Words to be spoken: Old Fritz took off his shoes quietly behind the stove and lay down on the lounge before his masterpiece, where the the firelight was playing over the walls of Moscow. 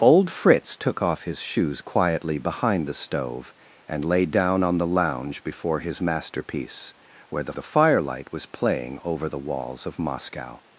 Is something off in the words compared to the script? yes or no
no